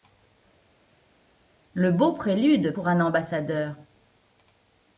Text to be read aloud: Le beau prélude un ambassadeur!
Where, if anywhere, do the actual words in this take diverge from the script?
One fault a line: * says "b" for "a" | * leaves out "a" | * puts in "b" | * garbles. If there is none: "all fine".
* puts in "pour"